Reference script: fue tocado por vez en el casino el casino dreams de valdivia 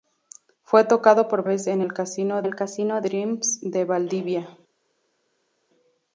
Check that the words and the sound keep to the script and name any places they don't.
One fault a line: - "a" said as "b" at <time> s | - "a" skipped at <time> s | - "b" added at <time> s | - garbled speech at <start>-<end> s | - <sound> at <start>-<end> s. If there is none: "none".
none